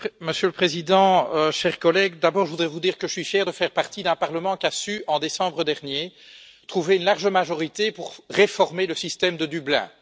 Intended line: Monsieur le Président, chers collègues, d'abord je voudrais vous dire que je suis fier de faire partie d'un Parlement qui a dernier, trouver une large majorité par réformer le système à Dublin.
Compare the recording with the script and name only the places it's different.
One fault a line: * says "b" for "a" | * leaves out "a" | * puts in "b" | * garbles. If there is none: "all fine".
* puts in "su en décembre"
* says "pour" for "par"
* says "de" for "à"